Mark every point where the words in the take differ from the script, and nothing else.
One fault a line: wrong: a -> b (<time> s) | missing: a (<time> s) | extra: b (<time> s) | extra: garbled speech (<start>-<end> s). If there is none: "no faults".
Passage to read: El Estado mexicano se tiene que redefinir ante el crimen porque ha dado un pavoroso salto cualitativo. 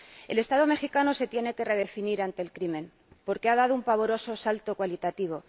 no faults